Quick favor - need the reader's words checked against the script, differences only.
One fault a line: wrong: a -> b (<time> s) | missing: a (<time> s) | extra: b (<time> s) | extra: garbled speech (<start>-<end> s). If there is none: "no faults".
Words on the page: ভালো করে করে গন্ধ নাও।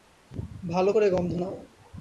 missing: করে (1.1 s)